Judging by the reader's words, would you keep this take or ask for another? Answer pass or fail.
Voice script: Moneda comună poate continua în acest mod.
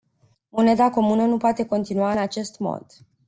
fail